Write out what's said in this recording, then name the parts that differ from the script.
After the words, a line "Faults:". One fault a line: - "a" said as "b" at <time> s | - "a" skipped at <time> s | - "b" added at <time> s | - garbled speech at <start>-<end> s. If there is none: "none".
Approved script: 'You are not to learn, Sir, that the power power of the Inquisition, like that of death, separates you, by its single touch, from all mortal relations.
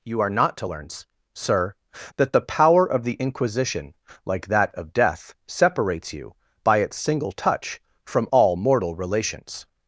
'You are not to learn, Sir, that the power of the Inquisition, like that of death, separates you, by its single touch, from all mortal relations.
Faults:
- "power" skipped at 2.8 s